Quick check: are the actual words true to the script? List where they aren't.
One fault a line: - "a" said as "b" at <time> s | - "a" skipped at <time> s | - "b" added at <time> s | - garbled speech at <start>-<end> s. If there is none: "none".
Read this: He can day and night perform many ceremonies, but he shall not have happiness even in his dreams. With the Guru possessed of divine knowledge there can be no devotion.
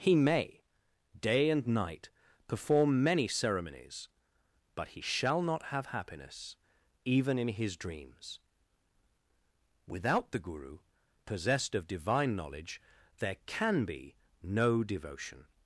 - "can" said as "may" at 0.1 s
- "With" said as "Without" at 9.9 s